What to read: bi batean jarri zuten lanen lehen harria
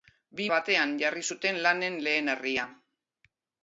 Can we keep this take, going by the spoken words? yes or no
yes